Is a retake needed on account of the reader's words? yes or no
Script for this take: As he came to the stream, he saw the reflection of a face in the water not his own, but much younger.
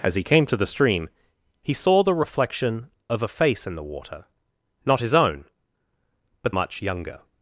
no